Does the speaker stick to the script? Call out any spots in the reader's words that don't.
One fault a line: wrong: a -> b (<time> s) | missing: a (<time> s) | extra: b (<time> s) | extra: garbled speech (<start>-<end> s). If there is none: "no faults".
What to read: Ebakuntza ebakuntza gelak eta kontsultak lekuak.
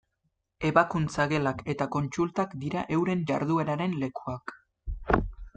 missing: ebakuntza (1.3 s)
extra: dira euren jardueraren (2.7 s)